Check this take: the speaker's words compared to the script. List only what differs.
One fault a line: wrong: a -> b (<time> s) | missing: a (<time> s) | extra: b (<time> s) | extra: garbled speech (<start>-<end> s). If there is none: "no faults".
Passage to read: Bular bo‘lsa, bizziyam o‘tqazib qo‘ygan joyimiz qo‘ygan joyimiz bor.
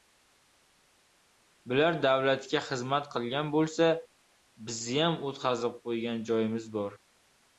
extra: davlatga xizmat qilgan (2.0 s)
missing: qo‘ygan joyimiz (6.7 s)